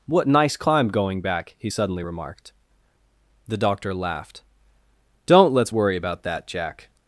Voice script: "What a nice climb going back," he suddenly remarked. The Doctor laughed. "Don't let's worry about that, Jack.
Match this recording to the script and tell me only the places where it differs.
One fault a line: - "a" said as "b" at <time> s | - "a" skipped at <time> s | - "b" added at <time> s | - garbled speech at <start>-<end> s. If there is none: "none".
- "a" skipped at 0.3 s